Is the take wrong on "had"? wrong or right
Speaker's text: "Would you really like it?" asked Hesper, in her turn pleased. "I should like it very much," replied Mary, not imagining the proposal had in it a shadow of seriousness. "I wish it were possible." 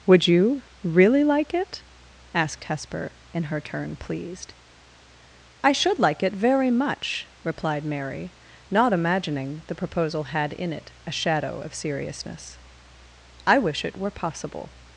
right